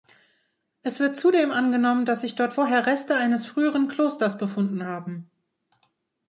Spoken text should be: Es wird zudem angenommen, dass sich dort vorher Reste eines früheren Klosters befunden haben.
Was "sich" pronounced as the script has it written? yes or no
yes